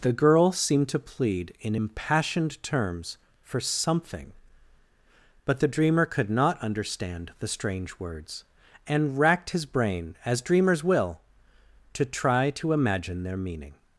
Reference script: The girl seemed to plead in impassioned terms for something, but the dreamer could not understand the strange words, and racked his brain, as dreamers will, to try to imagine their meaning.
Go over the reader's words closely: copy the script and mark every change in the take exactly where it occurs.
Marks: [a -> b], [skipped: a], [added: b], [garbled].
The girl seemed to plead in impassioned terms for something, but the dreamer could not understand the strange words, and racked his brain, as dreamers will, to try to imagine their meaning.